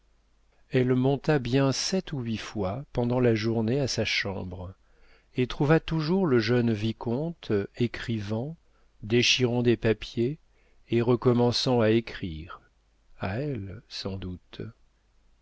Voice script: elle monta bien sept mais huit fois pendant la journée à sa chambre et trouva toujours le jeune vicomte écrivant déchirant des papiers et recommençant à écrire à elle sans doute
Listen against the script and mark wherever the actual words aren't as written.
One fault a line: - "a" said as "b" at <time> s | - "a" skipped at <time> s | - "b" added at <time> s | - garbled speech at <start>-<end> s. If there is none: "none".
- "mais" said as "ou" at 2.1 s